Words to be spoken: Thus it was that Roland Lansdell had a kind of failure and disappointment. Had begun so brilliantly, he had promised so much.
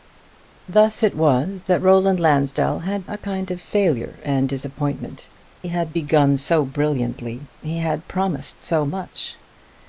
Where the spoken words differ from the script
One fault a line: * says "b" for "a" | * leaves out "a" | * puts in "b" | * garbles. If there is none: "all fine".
all fine